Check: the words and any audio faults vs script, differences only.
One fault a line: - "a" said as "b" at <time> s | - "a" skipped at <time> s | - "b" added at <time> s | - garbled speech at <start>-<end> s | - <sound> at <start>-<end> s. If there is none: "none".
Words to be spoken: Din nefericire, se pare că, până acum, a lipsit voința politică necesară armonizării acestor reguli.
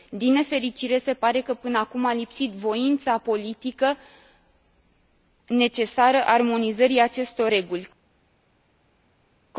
none